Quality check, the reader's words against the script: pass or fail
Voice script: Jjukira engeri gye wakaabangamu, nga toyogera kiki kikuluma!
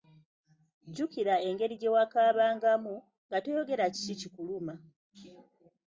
pass